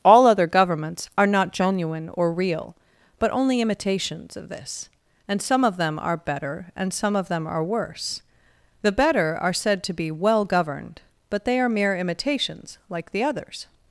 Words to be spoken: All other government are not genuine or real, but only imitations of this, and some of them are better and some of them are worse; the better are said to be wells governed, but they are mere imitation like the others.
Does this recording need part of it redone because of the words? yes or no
yes